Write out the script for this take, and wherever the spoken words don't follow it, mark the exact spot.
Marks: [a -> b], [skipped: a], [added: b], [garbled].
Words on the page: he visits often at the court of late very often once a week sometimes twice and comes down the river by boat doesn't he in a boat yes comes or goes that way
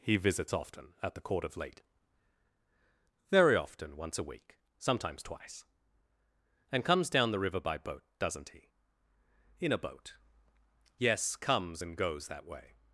he visits often at the court of late very often once a week sometimes twice and comes down the river by boat doesn't he in a boat yes comes [or -> and] goes that way